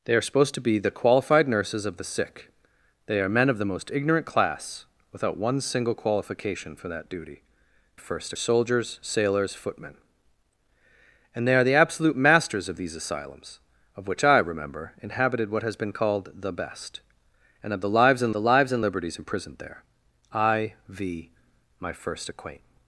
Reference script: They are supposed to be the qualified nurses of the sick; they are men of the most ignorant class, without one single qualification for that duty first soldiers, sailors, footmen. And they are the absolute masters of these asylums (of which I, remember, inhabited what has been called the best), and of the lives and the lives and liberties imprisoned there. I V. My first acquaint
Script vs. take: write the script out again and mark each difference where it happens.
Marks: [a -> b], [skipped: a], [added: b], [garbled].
They are supposed to be the qualified nurses of the sick; they are men of the most ignorant class, without one single qualification for that duty first soldiers, sailors, footmen. And they are the absolute masters of these asylums (of which I, remember, inhabited what has been called the best), and of the lives and the lives and liberties imprisoned there. I V. My first acquaint